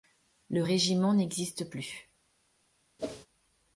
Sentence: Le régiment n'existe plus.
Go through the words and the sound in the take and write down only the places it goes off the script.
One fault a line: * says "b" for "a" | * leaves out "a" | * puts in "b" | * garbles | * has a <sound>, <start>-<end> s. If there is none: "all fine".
* has a whoosh, 3.0-3.3 s